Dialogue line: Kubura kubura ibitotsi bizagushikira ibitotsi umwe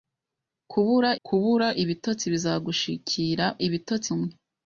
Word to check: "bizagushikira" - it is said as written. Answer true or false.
true